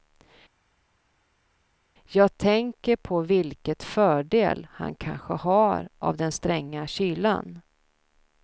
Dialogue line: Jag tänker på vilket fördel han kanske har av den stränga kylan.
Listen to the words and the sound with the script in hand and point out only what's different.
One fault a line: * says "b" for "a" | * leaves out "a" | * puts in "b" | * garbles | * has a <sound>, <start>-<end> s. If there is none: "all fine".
all fine